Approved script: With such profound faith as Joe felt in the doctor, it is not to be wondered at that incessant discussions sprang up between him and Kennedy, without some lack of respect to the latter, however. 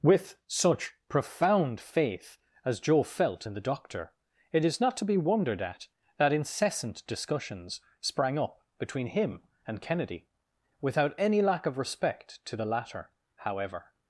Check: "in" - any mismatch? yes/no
no